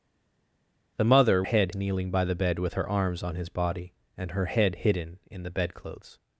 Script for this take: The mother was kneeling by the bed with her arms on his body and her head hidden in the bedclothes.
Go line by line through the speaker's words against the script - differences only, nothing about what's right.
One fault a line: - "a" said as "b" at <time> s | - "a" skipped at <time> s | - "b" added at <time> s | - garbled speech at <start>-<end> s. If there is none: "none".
- "was" said as "head" at 1.4 s